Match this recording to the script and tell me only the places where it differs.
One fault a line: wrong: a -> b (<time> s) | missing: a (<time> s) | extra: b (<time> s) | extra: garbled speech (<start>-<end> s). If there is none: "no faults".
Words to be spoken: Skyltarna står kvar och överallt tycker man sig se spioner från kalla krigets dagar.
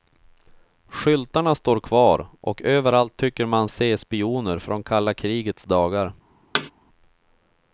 missing: sig (3.7 s)